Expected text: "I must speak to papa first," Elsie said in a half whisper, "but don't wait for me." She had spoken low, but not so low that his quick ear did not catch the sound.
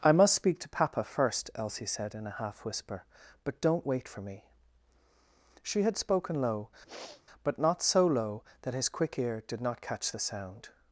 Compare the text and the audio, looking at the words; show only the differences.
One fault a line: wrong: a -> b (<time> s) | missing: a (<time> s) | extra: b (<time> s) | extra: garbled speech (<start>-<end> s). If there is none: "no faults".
no faults